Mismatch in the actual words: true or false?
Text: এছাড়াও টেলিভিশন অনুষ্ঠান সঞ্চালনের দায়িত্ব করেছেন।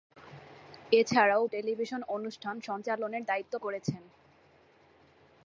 false